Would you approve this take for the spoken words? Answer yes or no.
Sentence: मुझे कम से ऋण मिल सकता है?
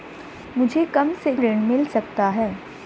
yes